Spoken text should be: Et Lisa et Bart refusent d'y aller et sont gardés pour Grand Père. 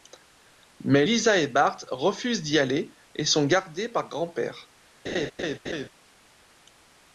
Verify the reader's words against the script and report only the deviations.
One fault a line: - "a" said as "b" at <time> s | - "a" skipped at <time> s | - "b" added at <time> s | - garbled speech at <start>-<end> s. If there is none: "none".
- "Et" said as "Mais" at 0.8 s
- "pour" said as "par" at 3.9 s